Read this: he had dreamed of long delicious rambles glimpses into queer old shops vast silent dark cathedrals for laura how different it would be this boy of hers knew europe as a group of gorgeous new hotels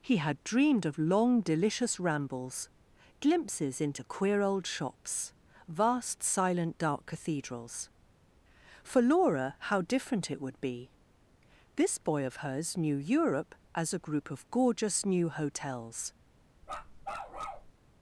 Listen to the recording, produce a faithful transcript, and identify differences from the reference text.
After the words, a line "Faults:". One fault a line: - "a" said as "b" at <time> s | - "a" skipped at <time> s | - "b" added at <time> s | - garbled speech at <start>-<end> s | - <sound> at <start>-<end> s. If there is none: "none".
he had dreamed of long delicious rambles glimpses into queer old shops vast silent dark cathedrals for laura how different it would be this boy of hers knew europe as a group of gorgeous new hotels
Faults:
- bark at 16.6-17.7 s